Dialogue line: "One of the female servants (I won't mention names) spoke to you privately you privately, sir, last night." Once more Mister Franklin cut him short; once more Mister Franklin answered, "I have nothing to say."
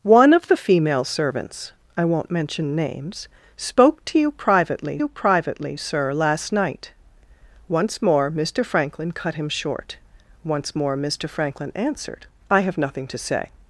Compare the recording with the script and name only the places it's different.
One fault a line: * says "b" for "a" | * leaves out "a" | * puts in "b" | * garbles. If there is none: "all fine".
all fine